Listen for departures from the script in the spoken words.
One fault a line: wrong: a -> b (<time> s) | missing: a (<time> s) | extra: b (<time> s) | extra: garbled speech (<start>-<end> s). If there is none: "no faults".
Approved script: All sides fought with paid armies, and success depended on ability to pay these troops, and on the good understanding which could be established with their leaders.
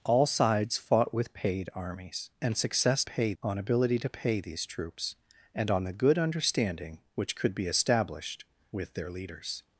wrong: depended -> pay (3.0 s)